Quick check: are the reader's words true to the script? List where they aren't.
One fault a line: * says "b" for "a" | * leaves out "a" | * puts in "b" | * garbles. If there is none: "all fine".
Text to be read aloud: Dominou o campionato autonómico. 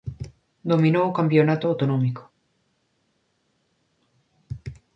all fine